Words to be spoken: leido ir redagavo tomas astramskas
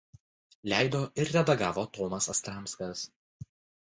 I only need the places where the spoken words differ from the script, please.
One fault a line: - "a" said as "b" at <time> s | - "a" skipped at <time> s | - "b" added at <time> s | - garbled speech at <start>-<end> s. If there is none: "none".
none